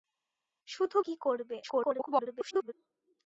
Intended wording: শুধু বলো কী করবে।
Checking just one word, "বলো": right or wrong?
wrong